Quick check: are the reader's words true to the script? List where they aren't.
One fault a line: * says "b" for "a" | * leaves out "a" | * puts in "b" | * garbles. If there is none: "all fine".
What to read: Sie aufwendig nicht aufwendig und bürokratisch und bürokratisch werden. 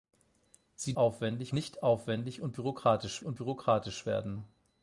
all fine